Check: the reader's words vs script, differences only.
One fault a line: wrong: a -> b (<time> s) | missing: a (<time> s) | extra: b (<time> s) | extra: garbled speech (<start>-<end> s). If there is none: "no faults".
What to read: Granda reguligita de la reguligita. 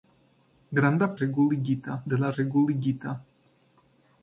no faults